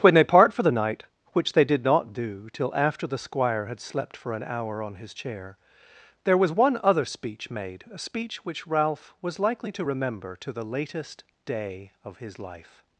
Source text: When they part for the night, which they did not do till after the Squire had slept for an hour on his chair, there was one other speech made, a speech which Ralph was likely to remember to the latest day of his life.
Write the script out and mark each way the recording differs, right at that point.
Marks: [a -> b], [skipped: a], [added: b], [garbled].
When they part for the night, which they did not do till after the Squire had slept for an hour on his chair, there was one other speech made, a speech which Ralph was likely to remember to the latest day of his life.